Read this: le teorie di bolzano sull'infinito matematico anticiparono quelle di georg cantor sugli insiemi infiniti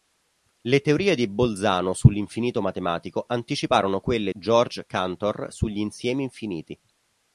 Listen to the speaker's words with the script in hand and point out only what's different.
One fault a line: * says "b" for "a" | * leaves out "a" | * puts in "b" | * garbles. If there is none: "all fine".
* leaves out "di"